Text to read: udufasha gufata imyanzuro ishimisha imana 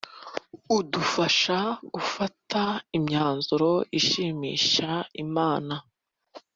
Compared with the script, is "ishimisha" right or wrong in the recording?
right